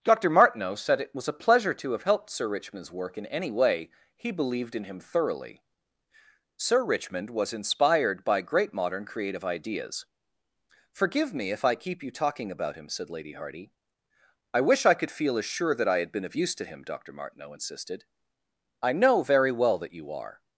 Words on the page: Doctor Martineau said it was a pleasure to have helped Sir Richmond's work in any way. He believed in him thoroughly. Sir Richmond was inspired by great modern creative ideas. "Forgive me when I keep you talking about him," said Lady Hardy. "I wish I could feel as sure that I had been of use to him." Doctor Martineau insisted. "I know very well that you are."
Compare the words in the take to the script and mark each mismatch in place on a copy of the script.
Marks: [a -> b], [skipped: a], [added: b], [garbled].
Doctor Martineau said it was a pleasure to have helped Sir Richmond's work in any way. He believed in him thoroughly. Sir Richmond was inspired by great modern creative ideas. "Forgive me [when -> if] I keep you talking about him," said Lady Hardy. "I wish I could feel as sure that I had been of use to him." Doctor Martineau insisted. "I know very well that you are."